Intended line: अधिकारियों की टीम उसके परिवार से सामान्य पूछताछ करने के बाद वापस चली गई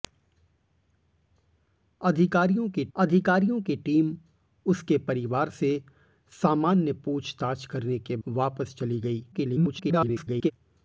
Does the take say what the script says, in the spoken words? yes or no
no